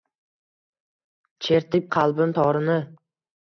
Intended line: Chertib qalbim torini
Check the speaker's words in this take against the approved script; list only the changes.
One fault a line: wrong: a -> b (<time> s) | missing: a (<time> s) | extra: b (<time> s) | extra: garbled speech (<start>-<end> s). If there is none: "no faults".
no faults